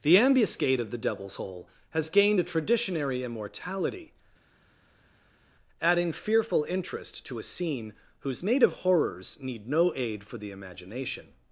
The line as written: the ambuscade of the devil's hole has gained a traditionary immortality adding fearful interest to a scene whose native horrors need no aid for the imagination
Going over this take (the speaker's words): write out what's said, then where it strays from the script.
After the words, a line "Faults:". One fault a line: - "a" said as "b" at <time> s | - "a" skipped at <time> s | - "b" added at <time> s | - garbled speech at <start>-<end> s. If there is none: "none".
the ambuscade of the devil's hole has gained a traditionary immortality adding fearful interest to a scene whose native horrors need no aid for the imagination
Faults:
none